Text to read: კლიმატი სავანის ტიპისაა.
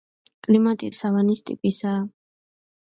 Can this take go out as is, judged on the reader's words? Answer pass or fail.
pass